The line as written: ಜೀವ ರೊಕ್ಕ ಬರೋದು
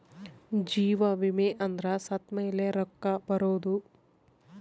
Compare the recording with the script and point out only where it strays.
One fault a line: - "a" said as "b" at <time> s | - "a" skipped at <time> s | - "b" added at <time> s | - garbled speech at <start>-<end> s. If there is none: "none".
- "ವಿಮೆ ಅಂದ್ರ ಸತ್ತ್ಮೆಲೆ" added at 1.1 s